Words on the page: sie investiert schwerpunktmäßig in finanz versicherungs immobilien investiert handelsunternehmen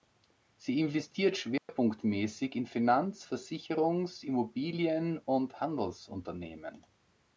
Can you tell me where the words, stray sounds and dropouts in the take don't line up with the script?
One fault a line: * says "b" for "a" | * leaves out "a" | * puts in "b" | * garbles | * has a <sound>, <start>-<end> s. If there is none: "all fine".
* has a dropout, 1.6-1.7 s
* says "und" for "investiert"